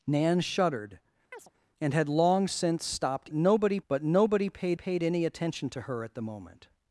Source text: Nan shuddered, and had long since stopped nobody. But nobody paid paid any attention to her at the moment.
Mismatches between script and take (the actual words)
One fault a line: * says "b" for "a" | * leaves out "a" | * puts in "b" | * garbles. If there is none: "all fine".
all fine